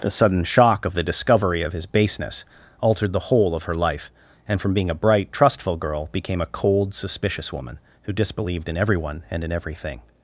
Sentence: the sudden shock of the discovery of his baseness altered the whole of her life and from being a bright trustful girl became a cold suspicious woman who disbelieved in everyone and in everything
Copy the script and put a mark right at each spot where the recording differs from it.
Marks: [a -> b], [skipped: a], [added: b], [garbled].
the sudden shock of the discovery of his baseness altered the whole of her life and from being a bright trustful girl became a cold suspicious woman who disbelieved in everyone and in everything